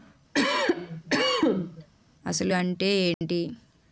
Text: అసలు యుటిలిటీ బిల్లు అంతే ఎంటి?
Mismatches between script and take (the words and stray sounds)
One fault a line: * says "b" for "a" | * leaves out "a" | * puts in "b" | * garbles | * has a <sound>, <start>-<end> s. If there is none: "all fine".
* has a cough, 0.3-1.9 s
* leaves out "యుటిలిటీ బిల్లు"
* has a dropout, 3.1-3.2 s